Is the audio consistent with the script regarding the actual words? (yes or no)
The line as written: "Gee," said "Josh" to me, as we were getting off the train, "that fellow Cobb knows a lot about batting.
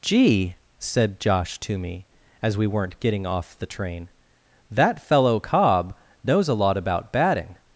no